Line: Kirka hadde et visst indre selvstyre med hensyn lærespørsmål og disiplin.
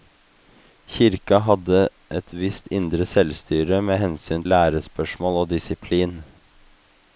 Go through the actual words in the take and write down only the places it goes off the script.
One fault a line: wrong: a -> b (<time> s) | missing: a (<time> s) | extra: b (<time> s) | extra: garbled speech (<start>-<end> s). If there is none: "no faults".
no faults